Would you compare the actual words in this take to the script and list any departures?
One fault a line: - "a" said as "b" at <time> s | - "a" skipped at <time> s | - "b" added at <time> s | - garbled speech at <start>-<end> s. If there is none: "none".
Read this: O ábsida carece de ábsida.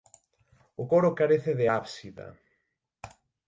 - "ábsida" said as "coro" at 0.8 s